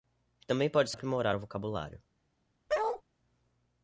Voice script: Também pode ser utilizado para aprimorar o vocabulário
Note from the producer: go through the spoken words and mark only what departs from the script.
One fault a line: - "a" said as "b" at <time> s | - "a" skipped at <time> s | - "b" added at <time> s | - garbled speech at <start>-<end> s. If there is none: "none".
- "ser utilizado para" skipped at 0.9 s